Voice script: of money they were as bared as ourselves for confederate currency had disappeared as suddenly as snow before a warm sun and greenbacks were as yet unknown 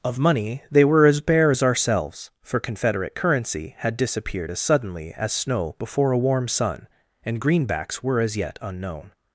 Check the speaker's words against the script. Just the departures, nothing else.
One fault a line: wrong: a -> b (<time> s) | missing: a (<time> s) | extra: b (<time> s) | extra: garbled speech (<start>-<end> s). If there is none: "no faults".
wrong: bared -> bare (1.2 s)